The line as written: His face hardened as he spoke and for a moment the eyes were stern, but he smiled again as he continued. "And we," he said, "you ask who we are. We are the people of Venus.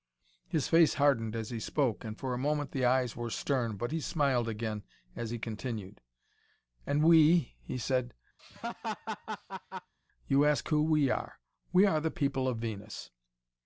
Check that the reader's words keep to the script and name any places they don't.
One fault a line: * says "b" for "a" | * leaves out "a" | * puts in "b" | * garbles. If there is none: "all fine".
all fine